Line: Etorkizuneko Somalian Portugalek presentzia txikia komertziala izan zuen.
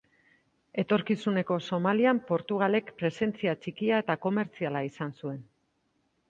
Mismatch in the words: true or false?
true